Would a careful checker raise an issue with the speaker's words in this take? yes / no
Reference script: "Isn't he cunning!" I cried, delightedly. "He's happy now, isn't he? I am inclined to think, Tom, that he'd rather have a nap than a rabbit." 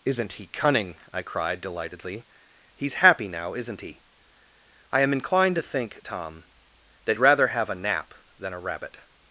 yes